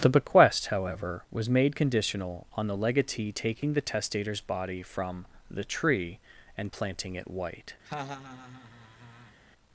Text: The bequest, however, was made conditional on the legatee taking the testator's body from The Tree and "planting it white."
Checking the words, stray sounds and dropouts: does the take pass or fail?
fail